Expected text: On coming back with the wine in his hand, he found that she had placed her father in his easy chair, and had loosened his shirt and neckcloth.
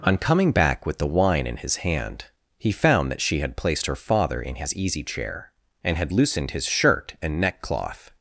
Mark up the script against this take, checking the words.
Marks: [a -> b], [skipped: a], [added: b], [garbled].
On coming back with the wine in his hand, he found that she had placed her father in his easy chair, and had loosened his shirt and neckcloth.